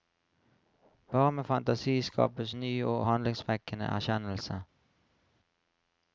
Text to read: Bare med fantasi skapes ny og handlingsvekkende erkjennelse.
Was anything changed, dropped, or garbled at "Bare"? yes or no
no